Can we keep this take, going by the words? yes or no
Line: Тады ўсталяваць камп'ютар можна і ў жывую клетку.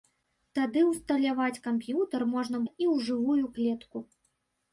yes